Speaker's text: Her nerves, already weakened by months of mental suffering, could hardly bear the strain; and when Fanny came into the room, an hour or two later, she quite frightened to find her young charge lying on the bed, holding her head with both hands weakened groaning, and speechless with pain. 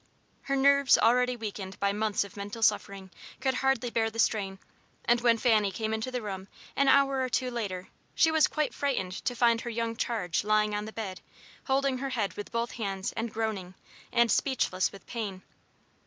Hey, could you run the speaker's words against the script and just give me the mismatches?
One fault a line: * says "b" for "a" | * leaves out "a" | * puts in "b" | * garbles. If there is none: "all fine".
* puts in "was"
* says "and" for "weakened"